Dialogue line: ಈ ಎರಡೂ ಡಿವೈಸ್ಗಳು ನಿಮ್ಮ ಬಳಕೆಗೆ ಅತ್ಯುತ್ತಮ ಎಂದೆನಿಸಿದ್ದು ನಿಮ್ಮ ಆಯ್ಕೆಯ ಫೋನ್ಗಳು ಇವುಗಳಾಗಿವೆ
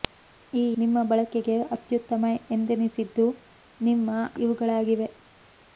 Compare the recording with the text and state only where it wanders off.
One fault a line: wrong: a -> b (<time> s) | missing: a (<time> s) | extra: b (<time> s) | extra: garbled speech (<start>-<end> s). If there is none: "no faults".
missing: ಎರಡೂ ಡಿವೈಸ್ಗಳು (0.8 s)
missing: ಆಯ್ಕೆಯ ಫೋನ್ಗಳು (4.1 s)